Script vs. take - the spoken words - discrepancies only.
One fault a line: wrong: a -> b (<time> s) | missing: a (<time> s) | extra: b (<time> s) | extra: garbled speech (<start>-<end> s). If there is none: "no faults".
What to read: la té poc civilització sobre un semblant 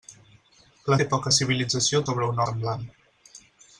no faults